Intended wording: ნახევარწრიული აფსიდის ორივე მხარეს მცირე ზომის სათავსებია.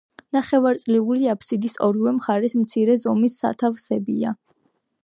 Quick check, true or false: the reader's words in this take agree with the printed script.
true